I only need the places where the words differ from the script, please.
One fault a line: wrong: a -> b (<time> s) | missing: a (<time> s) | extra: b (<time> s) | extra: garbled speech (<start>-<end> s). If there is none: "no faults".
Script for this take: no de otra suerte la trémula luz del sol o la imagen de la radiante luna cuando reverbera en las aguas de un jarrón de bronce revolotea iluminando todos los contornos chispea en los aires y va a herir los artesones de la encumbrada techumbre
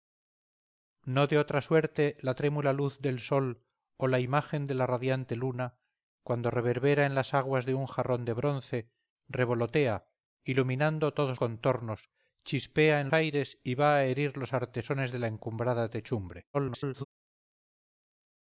missing: los (11.4 s)
missing: los (13.1 s)
extra: garbled speech (16.5-17.0 s)